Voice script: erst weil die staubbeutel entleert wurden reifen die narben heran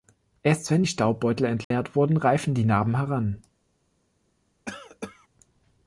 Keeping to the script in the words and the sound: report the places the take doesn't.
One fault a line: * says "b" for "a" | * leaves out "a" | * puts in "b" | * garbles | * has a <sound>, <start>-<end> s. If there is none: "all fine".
* says "wenn" for "weil"
* has a dropout, 1.6-1.7 s
* has a cough, 4.7-5.3 s